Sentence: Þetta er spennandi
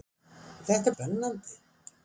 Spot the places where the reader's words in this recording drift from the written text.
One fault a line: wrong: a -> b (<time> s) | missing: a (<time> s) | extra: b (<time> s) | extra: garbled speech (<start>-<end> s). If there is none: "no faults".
no faults